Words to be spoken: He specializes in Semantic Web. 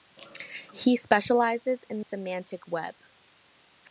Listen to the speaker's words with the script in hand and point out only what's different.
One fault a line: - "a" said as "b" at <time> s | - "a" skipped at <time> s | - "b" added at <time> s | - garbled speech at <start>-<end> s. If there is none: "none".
none